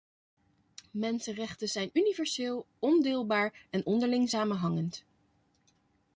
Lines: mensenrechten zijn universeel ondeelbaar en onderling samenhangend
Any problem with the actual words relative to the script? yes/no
no